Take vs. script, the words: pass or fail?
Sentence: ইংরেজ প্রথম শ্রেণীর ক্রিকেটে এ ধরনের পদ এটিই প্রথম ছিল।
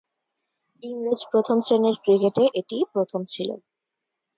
fail